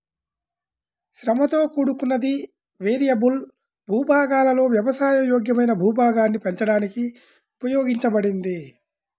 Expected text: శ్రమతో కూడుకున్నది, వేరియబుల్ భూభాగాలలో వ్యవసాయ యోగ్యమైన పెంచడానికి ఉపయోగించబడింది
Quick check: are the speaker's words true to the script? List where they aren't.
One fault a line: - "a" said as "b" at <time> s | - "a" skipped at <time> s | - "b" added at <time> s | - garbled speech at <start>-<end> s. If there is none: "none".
- "భూభాగాన్ని" added at 5.8 s